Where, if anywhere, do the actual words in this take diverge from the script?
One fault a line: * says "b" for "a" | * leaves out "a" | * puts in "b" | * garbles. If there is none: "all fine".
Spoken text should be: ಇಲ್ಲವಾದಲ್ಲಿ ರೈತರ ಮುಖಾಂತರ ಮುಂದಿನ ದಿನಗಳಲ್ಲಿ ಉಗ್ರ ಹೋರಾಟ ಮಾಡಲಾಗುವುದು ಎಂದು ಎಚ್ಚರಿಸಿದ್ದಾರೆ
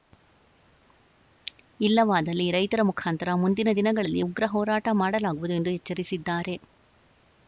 all fine